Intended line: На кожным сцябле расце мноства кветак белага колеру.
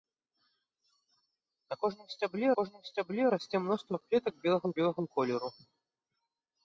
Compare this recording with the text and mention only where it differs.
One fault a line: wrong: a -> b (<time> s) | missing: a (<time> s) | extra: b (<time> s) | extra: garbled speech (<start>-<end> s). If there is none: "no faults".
extra: кожным сцябле (2.6 s)
extra: белага (4.8 s)